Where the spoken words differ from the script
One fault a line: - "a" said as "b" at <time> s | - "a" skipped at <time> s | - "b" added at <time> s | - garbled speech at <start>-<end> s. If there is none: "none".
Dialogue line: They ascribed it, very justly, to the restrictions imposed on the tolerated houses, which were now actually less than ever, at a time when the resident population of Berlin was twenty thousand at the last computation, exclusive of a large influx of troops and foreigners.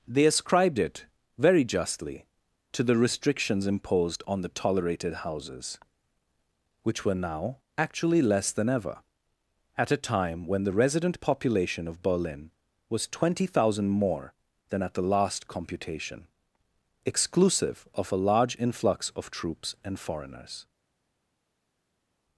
- "more than" added at 13.9 s